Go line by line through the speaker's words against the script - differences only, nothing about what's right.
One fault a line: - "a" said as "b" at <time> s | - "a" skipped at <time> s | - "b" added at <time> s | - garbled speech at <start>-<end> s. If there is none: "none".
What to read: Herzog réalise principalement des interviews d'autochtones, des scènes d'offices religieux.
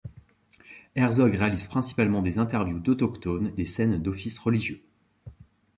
none